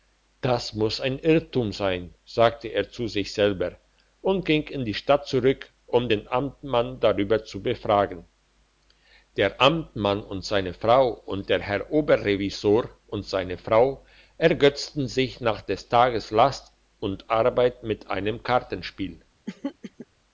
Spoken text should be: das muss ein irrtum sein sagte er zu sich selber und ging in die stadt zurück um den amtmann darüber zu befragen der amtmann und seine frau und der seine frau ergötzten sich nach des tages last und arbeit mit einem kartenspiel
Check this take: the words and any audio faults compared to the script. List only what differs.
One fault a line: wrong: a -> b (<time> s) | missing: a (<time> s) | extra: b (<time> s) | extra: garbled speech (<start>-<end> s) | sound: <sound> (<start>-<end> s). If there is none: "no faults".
extra: herr oberrevisor und (11.6 s)
sound: throat clearing (19.5-20.1 s)